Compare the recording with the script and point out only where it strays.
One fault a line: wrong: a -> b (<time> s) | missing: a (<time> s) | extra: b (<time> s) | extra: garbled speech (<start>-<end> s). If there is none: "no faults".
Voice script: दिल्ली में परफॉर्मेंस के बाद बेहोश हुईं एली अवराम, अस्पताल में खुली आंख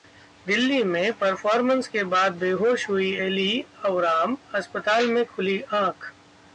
no faults